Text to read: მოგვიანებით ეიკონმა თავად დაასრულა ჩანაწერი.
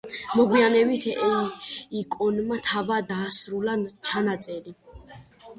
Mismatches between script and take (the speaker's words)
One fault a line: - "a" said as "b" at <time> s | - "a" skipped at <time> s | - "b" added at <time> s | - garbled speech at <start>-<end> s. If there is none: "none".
none